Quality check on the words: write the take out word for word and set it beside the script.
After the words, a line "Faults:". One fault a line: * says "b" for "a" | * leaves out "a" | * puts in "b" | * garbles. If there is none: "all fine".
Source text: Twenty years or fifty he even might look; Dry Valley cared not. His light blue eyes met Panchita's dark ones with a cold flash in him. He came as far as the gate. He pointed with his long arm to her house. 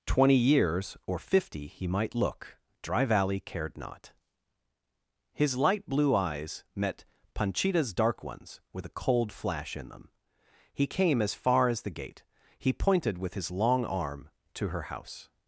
Twenty years or fifty he might look; Dry Valley cared not. His light blue eyes met Panchita's dark ones with a cold flash in them. He came as far as the gate. He pointed with his long arm to her house.
Faults:
* leaves out "even"
* says "them" for "him"